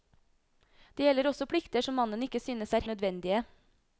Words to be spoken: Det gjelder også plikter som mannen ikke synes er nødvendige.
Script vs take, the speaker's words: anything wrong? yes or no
no